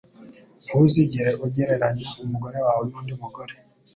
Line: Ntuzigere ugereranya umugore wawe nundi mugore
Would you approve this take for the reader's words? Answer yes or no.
yes